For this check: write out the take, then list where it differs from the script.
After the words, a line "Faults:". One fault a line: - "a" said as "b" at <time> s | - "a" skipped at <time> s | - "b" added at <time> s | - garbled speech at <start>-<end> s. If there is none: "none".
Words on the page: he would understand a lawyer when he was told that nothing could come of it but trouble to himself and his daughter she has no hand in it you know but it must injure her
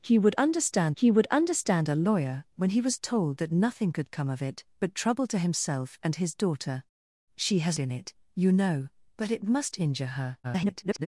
he would understand he would understand a lawyer when he was told that nothing could come of it but trouble to himself and his daughter she has in it you know but it must injure her [garbled]
Faults:
- "he would understand" added at 1.0 s
- "no hand" skipped at 7.8 s
- garbled speech at 10.4-11.1 s